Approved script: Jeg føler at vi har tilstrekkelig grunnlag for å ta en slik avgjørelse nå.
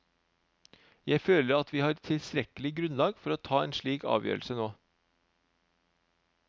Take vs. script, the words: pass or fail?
pass